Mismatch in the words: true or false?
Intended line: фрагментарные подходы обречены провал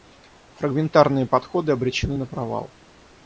true